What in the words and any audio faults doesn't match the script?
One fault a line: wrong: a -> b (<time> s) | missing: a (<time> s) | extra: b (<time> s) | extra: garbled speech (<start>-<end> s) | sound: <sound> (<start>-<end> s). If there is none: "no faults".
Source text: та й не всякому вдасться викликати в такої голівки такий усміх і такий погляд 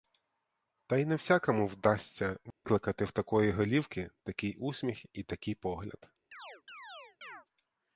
sound: dropout (2.5-2.6 s)
sound: chirp (6.3-7.5 s)